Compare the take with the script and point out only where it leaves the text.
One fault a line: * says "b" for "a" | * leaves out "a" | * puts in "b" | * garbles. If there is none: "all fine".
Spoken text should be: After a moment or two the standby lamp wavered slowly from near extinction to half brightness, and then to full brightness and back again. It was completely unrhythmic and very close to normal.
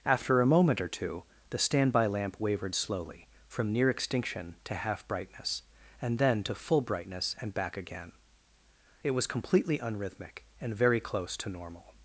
all fine